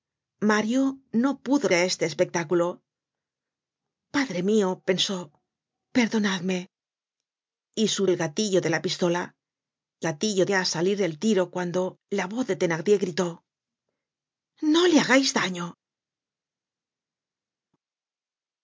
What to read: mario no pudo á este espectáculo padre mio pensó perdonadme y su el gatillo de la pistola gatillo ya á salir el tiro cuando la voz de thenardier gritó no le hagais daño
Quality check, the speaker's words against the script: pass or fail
pass